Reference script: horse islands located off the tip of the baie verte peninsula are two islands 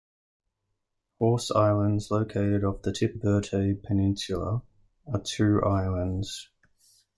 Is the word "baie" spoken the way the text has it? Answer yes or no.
no